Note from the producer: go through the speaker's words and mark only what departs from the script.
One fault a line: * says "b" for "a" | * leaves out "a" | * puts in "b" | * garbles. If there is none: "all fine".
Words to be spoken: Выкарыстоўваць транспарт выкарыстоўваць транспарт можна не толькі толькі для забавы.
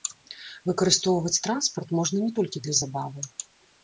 * leaves out "выкарыстоўваць транспарт"
* leaves out "толькі"